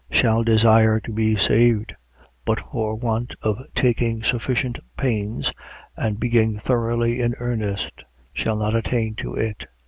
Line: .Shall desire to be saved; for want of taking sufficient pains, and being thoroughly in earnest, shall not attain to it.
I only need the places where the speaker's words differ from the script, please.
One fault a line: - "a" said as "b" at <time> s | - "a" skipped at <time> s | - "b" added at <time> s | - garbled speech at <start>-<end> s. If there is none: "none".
- "but" added at 2.4 s